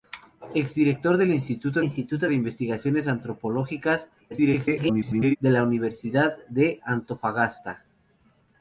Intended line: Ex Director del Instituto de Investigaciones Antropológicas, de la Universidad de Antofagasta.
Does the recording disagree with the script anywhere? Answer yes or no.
yes